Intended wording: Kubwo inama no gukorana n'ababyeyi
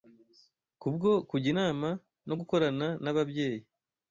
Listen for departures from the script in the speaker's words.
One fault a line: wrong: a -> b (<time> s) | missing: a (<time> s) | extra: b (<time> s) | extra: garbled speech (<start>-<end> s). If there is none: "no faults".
extra: kujya (1.3 s)